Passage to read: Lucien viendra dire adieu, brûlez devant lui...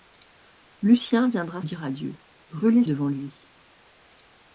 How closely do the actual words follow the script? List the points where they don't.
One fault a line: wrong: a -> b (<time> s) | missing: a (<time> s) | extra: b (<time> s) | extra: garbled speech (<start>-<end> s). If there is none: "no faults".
no faults